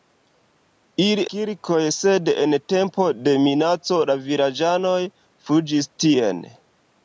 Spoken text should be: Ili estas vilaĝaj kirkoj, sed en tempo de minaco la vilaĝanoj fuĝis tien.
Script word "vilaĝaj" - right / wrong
wrong